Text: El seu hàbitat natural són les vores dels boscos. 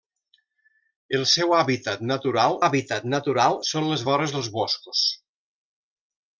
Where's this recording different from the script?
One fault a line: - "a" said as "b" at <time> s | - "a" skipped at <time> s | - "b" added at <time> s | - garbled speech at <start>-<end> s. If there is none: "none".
- "hàbitat natural" added at 2.6 s